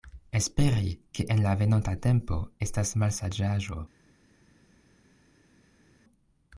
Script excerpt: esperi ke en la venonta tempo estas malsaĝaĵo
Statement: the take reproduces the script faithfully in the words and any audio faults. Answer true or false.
true